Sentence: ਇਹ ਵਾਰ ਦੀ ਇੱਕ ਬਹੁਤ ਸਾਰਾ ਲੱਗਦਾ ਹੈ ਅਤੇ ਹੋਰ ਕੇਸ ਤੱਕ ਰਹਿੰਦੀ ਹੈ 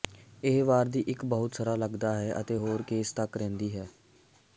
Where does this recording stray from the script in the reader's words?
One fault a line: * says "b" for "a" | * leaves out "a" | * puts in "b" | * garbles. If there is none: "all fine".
all fine